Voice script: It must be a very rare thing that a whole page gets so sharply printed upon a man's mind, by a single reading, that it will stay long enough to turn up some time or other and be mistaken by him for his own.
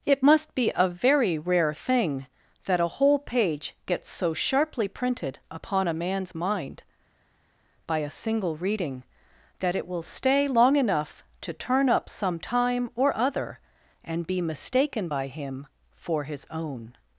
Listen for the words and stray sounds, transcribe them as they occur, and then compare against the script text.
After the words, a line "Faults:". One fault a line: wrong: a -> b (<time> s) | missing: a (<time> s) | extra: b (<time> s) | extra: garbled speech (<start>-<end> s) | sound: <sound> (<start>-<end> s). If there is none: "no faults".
It must be a very rare thing that a whole page gets so sharply printed upon a man's mind, by a single reading, that it will stay long enough to turn up some time or other and be mistaken by him for his own.
Faults:
no faults